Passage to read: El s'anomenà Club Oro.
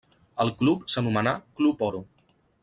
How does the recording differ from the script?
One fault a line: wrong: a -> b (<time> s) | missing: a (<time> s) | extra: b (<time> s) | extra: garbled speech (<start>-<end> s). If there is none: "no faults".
extra: club (0.6 s)